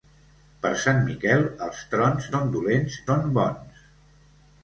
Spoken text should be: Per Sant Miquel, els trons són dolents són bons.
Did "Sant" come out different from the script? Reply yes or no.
no